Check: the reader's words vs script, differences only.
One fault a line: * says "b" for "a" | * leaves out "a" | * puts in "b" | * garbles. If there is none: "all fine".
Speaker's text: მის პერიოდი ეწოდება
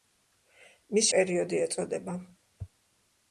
all fine